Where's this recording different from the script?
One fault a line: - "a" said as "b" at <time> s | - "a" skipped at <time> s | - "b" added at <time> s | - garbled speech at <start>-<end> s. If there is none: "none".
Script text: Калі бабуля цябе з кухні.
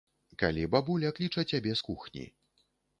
- "кліча" added at 1.2 s